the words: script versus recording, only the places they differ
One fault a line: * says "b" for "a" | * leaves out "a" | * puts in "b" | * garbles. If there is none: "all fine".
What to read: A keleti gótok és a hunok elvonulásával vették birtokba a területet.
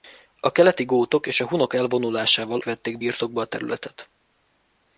all fine